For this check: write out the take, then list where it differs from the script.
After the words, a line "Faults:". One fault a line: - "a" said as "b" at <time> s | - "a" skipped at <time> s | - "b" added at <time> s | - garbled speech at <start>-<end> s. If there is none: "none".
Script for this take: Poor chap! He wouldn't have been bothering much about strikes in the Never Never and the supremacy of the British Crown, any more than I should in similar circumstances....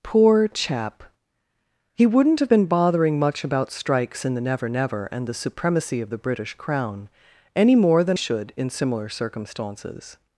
Poor chap! He wouldn't have been bothering much about strikes in the Never Never and the supremacy of the British Crown, any more than should in similar circumstances....
Faults:
- "I" skipped at 8.2 s